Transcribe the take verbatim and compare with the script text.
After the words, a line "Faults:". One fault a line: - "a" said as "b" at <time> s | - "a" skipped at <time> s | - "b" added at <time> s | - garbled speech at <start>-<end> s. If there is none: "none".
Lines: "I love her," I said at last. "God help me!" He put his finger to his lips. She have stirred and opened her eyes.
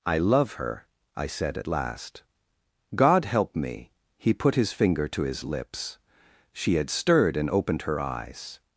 "I love her," I said at last. "God help me!" He put his finger to his lips. She had stirred and opened her eyes.
Faults:
- "have" said as "had" at 6.8 s